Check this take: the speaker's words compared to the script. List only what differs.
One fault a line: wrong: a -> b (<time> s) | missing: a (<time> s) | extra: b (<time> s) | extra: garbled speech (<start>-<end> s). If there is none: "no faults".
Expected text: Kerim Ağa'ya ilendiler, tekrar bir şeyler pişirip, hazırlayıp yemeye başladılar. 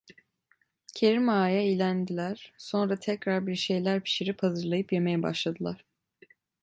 extra: sonra (2.6 s)